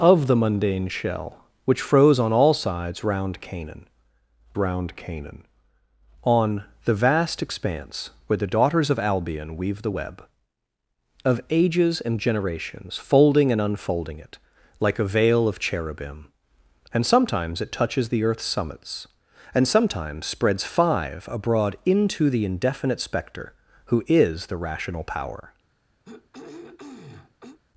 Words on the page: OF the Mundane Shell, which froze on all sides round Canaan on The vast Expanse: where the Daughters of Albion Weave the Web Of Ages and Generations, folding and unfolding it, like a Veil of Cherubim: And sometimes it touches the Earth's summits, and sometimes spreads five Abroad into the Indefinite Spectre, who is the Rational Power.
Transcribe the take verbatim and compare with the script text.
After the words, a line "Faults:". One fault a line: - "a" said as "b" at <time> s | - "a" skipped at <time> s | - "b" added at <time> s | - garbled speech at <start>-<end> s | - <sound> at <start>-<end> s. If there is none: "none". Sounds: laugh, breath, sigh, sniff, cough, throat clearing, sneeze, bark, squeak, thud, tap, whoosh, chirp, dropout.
OF the Mundane Shell, which froze on all sides round Canaan round Canaan on The vast Expanse: where the Daughters of Albion Weave the Web Of Ages and Generations, folding and unfolding it, like a Veil of Cherubim: And sometimes it touches the Earth's summits, and sometimes spreads five Abroad into the Indefinite Spectre, who is the Rational Power.
Faults:
- "round Canaan" added at 4.6 s
- throat clearing at 26.0-27.6 s